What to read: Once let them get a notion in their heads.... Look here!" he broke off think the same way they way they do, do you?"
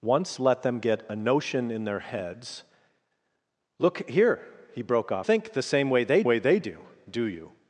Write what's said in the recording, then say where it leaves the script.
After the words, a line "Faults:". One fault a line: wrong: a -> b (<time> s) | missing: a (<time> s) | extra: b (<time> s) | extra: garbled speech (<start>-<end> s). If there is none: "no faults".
Once let them get a notion in their heads.... Look here!" he broke off think the same way they way they do, do you?"
Faults:
no faults